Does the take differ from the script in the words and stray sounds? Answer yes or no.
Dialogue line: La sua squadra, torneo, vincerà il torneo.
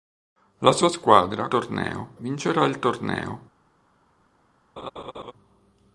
yes